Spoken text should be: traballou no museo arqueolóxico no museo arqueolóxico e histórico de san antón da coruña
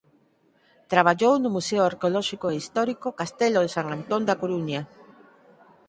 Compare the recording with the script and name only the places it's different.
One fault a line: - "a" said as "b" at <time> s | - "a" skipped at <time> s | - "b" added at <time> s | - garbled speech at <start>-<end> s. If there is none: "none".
- "no museo arqueolóxico" skipped at 2.5 s
- "castelo" added at 3.2 s